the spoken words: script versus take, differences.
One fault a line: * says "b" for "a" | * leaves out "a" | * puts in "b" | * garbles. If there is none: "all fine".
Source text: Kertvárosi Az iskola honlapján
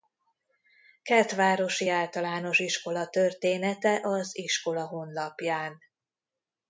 * puts in "Általános Iskola története"